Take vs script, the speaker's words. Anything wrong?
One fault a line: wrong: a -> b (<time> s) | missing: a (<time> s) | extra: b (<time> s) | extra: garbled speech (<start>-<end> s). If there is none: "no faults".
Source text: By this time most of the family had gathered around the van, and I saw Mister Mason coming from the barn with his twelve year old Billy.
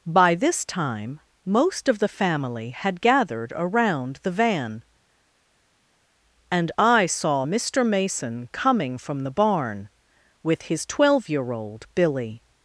no faults